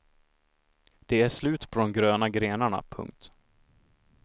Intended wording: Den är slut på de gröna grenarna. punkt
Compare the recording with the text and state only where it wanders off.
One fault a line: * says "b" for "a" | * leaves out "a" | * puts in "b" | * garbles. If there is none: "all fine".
* says "Det" for "Den"